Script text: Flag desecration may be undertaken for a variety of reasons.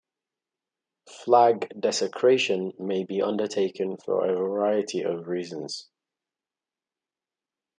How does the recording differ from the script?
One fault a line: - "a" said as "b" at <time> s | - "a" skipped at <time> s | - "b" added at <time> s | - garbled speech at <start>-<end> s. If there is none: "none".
none